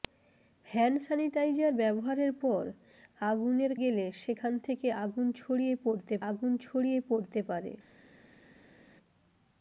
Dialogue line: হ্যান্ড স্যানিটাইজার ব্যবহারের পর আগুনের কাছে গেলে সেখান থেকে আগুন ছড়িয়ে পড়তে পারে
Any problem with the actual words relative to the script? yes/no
yes